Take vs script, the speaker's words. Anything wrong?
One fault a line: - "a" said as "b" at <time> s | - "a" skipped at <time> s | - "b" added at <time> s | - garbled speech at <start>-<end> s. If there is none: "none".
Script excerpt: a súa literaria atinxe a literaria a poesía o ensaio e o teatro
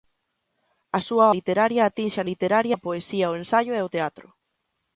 none